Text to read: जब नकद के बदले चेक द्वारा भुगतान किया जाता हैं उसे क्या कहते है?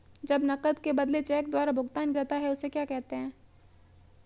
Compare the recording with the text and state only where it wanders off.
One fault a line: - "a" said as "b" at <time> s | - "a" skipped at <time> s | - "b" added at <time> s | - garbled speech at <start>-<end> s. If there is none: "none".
- "किया" skipped at 2.1 s